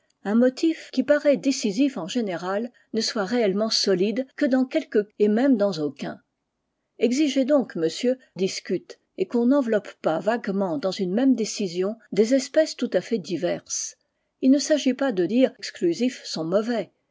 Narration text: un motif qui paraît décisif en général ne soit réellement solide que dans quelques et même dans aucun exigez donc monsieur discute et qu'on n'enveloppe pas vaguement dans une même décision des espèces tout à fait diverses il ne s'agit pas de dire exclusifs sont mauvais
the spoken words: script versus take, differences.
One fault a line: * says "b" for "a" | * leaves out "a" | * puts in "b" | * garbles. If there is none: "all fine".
all fine